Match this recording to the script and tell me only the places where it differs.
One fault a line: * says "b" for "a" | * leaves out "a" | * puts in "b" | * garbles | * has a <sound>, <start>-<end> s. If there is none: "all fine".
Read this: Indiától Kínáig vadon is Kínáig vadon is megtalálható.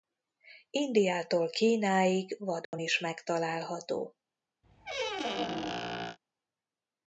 * has a dropout, 2.6-2.7 s
* leaves out "Kínáig vadon is"
* has a squeak, 4.6-6.2 s